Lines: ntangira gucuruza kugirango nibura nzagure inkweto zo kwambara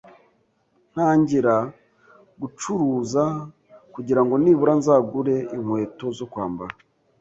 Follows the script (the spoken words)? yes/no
yes